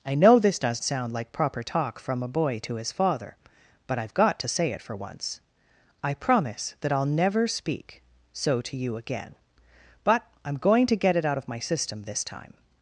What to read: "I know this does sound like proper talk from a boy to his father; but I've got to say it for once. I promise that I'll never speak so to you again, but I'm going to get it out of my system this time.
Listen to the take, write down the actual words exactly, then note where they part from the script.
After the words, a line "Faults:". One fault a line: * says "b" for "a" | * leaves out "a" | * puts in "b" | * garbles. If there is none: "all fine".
"I know this does sound like proper talk from a boy to his father; but I've got to say it for once. I promise that I'll never speak so to you again, but I'm going to get it out of my system this time.
Faults:
all fine